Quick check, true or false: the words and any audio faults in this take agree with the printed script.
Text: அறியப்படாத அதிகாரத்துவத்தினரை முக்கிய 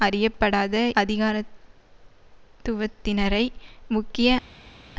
true